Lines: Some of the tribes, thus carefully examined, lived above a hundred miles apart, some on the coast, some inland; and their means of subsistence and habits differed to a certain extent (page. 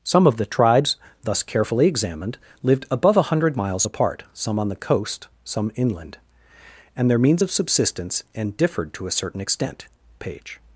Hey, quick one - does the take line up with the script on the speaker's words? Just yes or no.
no